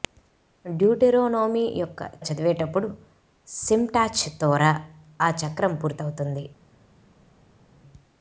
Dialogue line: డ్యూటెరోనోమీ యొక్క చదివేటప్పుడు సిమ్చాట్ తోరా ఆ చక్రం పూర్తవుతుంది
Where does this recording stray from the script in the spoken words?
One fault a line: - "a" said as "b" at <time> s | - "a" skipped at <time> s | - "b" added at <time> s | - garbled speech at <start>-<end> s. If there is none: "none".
none